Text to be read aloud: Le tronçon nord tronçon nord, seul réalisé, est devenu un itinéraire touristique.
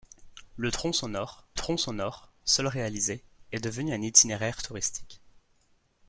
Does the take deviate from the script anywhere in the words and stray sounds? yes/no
no